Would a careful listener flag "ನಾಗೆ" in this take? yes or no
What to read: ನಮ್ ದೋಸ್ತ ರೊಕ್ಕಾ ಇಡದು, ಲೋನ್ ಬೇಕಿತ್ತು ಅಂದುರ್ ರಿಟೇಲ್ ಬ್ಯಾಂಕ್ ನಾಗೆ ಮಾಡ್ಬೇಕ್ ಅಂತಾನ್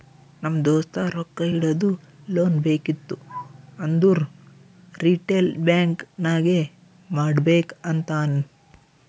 no